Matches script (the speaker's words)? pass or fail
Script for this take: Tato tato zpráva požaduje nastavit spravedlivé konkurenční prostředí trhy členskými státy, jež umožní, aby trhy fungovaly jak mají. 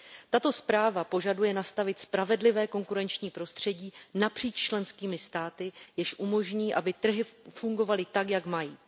fail